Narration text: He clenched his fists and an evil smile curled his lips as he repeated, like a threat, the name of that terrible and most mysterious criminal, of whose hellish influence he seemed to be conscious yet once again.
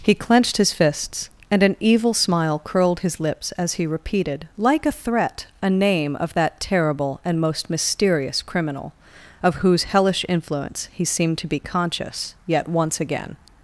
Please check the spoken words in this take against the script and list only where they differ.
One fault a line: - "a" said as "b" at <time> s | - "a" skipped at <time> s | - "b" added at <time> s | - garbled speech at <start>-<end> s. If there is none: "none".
- "the" said as "a" at 5.6 s